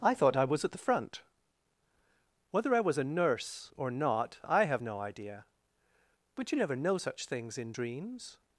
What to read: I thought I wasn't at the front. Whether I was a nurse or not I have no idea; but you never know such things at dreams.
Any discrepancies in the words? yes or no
yes